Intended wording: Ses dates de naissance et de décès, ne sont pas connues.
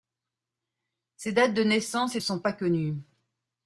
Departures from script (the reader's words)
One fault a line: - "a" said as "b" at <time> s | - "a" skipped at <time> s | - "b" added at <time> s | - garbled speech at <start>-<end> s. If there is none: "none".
- "de décès ne" skipped at 2.2 s